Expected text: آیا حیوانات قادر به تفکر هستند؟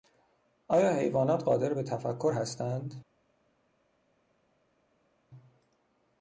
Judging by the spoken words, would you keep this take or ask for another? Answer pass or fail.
pass